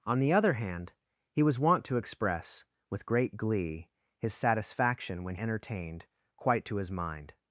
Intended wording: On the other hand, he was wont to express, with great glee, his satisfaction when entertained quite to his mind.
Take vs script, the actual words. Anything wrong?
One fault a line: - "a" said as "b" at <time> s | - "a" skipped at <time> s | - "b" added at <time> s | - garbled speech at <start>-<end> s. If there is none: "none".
none